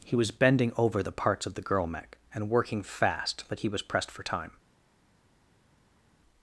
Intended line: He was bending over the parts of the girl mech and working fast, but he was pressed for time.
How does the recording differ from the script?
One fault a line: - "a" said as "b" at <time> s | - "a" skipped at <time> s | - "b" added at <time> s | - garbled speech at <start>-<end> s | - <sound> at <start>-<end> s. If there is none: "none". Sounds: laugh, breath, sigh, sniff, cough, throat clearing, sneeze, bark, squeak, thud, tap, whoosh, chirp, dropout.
none